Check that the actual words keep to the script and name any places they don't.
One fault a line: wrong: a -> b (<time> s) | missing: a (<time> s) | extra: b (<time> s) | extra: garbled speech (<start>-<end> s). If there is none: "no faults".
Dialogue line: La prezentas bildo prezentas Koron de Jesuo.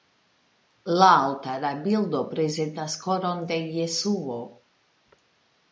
wrong: prezentas -> altara (1.2 s)